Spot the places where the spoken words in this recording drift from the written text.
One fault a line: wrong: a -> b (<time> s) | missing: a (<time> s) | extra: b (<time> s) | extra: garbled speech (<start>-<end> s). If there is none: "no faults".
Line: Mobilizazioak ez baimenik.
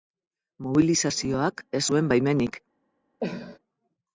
extra: zuen (1.9 s)